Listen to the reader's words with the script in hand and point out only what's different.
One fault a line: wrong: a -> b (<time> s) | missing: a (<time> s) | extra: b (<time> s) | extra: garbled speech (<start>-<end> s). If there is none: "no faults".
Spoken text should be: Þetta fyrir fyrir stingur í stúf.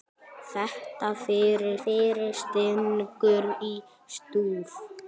no faults